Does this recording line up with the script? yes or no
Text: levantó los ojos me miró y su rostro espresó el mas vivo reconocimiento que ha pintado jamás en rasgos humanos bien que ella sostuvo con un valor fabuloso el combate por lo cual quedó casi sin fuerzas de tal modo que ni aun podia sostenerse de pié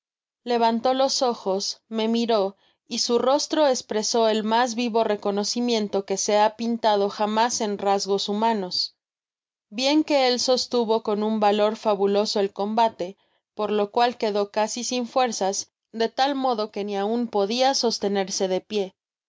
no